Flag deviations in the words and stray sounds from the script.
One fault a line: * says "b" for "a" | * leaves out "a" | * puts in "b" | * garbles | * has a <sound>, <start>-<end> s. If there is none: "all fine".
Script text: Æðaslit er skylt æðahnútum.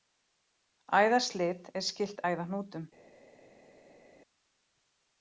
all fine